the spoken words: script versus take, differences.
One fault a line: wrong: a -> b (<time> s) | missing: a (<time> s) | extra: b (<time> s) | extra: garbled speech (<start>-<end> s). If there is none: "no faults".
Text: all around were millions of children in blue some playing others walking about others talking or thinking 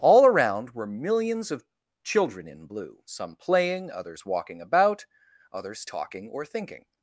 no faults